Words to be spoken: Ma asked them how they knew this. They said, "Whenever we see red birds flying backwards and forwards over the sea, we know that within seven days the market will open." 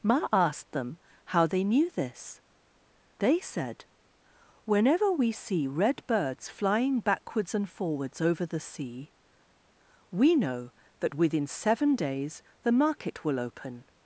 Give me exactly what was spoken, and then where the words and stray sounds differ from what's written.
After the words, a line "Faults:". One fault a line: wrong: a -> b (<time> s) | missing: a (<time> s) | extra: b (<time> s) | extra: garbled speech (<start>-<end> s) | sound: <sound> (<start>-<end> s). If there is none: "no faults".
Ma asked them how they knew this. They said, "Whenever we see red birds flying backwards and forwards over the sea, we know that within seven days the market will open."
Faults:
no faults